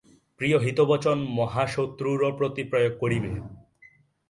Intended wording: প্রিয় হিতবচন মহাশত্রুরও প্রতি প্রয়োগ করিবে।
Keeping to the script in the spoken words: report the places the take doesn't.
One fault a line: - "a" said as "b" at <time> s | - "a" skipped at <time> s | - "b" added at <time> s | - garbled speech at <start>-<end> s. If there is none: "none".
none